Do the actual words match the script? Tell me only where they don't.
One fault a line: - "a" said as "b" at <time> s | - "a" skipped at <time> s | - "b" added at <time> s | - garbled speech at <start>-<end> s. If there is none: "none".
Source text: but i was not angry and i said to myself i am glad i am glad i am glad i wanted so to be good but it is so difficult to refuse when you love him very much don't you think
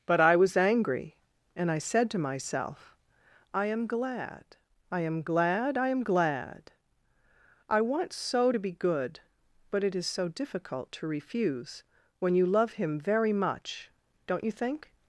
- "not" skipped at 0.6 s
- "wanted" said as "want" at 7.8 s